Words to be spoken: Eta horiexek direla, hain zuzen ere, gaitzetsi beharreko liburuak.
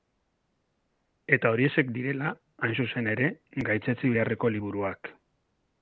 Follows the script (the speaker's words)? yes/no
yes